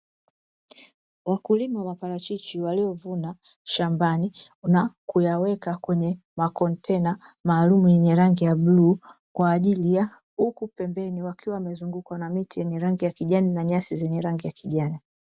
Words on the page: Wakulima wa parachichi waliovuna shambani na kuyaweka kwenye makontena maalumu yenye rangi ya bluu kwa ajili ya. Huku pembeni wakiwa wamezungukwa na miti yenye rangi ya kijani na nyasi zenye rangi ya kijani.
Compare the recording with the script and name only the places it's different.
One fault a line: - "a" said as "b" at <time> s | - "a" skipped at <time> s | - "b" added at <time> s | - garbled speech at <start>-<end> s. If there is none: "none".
none